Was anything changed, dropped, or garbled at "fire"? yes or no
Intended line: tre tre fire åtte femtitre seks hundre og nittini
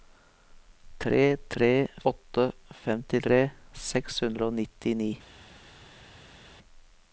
yes